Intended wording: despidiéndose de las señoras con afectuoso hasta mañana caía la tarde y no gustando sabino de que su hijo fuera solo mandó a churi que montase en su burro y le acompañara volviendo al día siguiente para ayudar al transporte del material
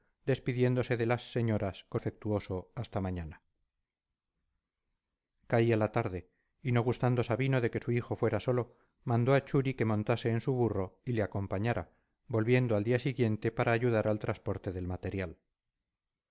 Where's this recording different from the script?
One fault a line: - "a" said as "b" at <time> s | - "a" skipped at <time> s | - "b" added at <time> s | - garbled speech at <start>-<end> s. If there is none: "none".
none